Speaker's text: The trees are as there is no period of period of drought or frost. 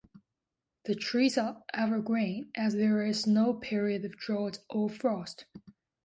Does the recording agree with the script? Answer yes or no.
no